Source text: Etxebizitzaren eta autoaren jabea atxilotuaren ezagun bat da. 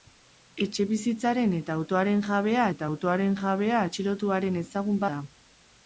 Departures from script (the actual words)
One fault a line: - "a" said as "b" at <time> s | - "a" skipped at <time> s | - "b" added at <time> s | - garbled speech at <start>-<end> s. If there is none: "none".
- "eta autoaren jabea" added at 2.7 s
- "bat" skipped at 5.0 s